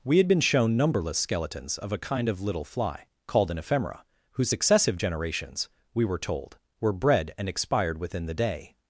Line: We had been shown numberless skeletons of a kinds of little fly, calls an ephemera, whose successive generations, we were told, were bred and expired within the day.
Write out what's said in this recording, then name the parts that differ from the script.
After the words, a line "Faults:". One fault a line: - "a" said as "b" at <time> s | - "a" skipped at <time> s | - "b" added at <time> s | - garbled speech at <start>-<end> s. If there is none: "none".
We had been shown numberless skeletons of a kind of little fly, called an ephemera, whose successive generations, we were told, were bred and expired within the day.
Faults:
- "kinds" said as "kind" at 2.0 s
- "calls" said as "called" at 3.3 s